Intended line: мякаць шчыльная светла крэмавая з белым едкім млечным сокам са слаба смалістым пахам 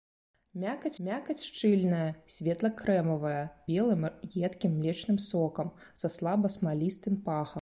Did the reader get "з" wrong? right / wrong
wrong